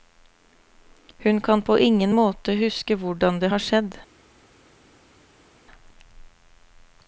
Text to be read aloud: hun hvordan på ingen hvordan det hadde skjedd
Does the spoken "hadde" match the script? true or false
false